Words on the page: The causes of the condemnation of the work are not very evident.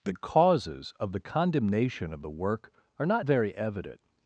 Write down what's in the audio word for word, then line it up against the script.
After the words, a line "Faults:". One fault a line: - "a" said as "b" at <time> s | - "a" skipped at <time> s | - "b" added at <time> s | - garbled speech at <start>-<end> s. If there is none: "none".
The causes of the condemnation of the work are not very evident.
Faults:
none